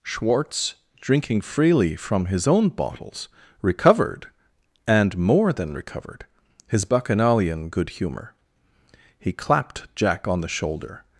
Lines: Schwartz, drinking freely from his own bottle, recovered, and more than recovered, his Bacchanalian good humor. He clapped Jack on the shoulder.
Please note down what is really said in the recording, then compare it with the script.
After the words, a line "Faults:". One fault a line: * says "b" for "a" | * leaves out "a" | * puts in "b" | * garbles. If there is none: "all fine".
Schwartz, drinking freely from his own bottles, recovered, and more than recovered, his Bacchanalian good humor. He clapped Jack on the shoulder.
Faults:
* says "bottles" for "bottle"